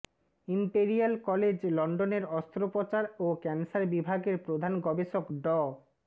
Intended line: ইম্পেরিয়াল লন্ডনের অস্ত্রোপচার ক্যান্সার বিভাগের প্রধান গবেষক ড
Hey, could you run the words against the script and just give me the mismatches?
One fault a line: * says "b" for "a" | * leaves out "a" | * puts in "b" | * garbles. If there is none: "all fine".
* puts in "কলেজ"
* puts in "ও"